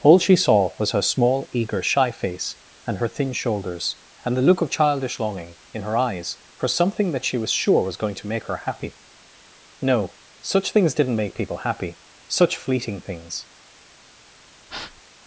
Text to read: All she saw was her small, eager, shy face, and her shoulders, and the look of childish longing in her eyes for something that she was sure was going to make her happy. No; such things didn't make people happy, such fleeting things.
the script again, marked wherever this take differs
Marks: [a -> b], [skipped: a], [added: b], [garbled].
All she saw was her small, eager, shy face, and her [added: thin] shoulders, and the look of childish longing in her eyes for something that she was sure was going to make her happy. No; such things didn't make people happy, such fleeting things.